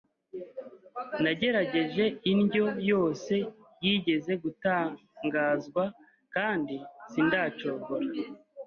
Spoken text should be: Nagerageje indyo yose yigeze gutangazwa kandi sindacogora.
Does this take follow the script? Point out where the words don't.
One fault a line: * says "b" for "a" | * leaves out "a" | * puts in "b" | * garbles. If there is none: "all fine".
all fine